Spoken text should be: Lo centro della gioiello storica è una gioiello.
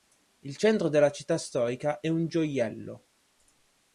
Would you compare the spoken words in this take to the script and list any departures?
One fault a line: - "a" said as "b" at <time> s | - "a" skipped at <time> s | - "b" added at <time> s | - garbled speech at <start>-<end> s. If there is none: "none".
- "Lo" said as "Il" at 0.4 s
- "gioiello" said as "città" at 1.1 s
- "una" said as "un" at 2.1 s